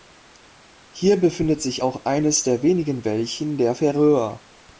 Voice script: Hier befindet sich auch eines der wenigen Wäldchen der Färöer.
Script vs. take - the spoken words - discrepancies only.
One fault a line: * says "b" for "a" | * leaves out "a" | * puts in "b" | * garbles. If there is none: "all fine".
all fine